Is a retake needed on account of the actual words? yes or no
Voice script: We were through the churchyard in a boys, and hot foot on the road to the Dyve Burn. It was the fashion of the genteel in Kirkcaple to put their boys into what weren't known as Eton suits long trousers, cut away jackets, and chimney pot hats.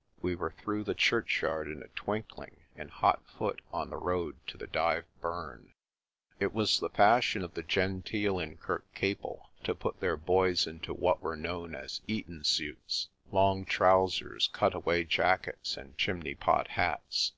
yes